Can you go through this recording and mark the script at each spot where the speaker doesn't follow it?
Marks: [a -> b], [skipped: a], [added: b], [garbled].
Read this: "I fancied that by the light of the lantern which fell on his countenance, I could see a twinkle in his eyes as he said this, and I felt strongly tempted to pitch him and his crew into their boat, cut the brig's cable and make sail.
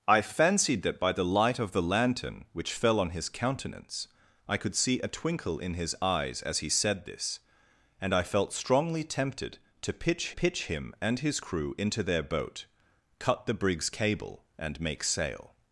"I fancied that by the light of the lantern which fell on his countenance, I could see a twinkle in his eyes as he said this, and I felt strongly tempted to pitch [added: pitch] him and his crew into their boat, cut the brig's cable and make sail.